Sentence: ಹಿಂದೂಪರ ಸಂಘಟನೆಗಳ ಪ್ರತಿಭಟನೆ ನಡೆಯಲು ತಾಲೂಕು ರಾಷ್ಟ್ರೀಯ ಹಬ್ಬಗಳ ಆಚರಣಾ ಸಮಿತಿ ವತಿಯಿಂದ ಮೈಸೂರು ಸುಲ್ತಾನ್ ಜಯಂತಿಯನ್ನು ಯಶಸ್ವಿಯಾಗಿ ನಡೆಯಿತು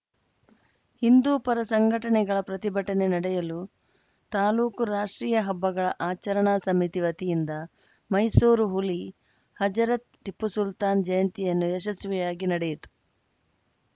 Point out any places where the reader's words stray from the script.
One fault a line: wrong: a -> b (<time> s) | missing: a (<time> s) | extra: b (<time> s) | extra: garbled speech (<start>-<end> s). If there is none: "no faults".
extra: ಹುಲಿ ಹಜರತ್ ಟಿಪ್ಪು (8.7 s)